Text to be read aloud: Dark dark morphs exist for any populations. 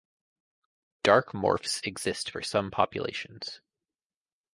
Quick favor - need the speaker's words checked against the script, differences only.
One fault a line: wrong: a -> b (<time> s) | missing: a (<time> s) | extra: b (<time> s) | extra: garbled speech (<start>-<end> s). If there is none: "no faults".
missing: dark (1.4 s)
wrong: any -> some (2.4 s)